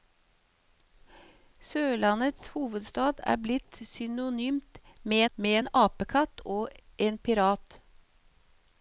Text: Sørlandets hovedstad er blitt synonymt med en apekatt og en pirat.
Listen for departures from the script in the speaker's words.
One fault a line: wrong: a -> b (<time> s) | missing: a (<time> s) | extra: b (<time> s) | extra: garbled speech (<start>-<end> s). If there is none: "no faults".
extra: med (5.4 s)